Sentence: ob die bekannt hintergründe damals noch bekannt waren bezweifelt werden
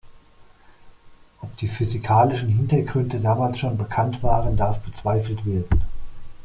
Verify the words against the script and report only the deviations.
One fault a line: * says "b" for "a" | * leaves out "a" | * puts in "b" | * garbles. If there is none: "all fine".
* says "physikalischen" for "bekannt"
* says "schon" for "noch"
* puts in "darf"